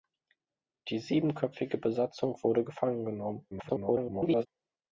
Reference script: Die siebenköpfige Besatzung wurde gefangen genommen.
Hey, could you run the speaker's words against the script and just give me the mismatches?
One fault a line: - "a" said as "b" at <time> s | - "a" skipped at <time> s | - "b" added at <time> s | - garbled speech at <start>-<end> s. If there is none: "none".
- garbled speech at 3.5-4.5 s